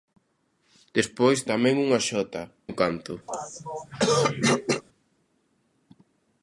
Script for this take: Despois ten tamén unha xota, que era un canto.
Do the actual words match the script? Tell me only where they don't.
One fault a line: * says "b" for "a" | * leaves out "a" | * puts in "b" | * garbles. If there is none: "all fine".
* leaves out "ten"
* leaves out "que era"